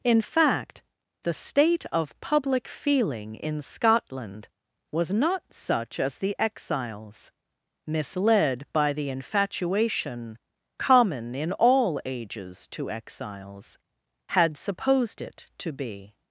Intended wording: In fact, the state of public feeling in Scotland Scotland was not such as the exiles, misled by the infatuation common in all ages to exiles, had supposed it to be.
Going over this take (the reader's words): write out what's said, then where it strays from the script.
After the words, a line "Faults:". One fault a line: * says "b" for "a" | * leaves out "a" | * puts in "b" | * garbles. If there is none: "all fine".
In fact, the state of public feeling in Scotland was not such as the exiles, misled by the infatuation common in all ages to exiles, had supposed it to be.
Faults:
* leaves out "Scotland"